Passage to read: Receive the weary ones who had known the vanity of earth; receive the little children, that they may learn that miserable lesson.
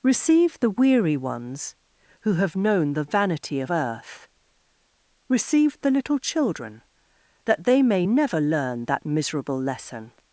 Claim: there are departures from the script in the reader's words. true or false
true